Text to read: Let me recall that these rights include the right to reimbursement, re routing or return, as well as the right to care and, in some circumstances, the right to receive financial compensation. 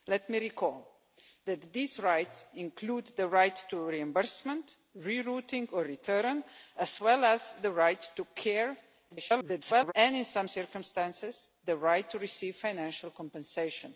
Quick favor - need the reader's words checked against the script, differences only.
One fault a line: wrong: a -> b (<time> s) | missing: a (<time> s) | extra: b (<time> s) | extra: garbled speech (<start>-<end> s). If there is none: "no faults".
extra: garbled speech (9.1-9.9 s)